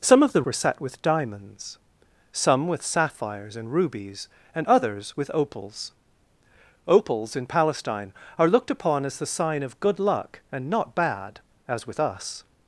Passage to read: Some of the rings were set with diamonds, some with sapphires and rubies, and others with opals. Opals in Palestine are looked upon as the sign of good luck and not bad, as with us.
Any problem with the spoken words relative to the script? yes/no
yes